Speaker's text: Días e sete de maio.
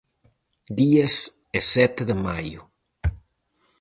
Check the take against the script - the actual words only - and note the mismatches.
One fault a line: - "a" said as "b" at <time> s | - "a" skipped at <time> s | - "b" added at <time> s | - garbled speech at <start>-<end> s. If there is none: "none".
none